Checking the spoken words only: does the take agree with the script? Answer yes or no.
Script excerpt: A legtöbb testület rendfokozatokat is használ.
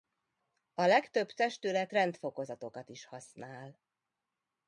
yes